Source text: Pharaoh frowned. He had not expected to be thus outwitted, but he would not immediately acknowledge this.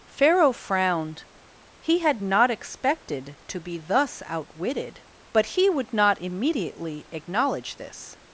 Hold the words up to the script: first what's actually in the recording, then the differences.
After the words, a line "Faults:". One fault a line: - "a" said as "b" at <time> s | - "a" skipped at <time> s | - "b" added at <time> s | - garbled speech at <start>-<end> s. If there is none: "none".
Pharaoh frowned. He had not expected to be thus outwitted, but he would not immediately acknowledge this.
Faults:
none